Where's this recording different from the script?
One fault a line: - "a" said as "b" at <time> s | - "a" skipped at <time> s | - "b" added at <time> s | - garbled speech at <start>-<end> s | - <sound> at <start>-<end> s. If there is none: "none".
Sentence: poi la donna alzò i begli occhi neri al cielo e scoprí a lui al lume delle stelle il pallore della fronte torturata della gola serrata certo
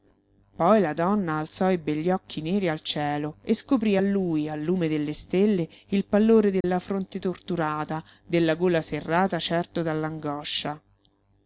- dropout at 6.6-6.6 s